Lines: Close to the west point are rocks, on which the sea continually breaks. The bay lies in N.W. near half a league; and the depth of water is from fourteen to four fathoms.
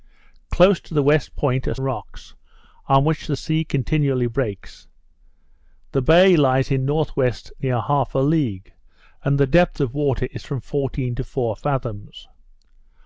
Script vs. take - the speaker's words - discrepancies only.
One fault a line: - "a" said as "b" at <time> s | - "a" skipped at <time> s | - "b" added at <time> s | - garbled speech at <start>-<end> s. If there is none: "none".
none